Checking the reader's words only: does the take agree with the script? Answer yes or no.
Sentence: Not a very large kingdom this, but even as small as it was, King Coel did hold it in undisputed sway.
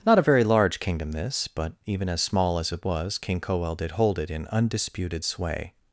yes